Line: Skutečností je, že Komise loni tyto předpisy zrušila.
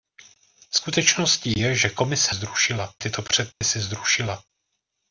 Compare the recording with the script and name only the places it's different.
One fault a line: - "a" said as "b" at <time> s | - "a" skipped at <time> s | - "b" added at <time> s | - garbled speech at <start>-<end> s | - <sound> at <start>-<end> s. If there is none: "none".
- "loni" said as "zrušila" at 2.3 s
- dropout at 3.5-3.6 s